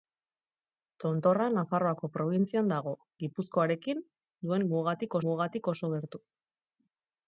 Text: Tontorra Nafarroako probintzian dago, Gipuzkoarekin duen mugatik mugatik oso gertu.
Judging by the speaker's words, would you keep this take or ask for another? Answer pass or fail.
pass